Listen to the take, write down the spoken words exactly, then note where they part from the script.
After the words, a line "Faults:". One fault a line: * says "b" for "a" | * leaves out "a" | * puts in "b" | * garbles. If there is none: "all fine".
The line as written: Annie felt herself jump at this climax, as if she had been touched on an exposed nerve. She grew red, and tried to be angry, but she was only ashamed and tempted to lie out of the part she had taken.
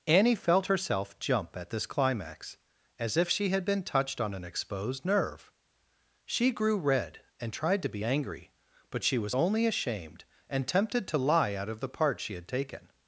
Annie felt herself jump at this climax, as if she had been touched on an exposed nerve. She grew red, and tried to be angry, but she was only ashamed and tempted to lie out of the part she had taken.
Faults:
all fine